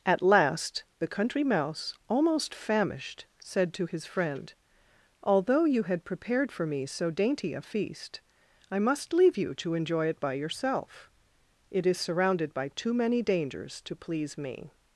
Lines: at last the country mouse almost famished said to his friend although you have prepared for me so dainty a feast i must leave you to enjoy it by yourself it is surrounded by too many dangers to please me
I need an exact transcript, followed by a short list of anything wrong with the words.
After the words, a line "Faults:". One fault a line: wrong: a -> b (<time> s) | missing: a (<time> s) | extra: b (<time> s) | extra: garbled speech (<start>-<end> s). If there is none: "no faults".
at last the country mouse almost famished said to his friend although you had prepared for me so dainty a feast i must leave you to enjoy it by yourself it is surrounded by too many dangers to please me
Faults:
wrong: have -> had (5.8 s)